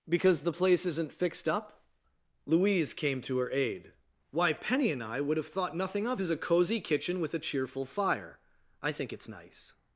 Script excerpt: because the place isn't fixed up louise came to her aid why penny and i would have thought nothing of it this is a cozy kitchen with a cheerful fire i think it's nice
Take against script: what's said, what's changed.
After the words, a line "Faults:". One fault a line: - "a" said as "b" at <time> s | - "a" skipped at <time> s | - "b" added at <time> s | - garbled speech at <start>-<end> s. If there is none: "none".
because the place isn't fixed up louise came to her aid why penny and i would have thought nothing of is a cozy kitchen with a cheerful fire i think it's nice
Faults:
- "it this" skipped at 6.2 s